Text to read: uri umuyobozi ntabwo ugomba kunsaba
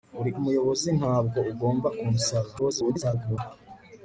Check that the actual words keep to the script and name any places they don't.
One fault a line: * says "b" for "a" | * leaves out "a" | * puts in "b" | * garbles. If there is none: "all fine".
* garbles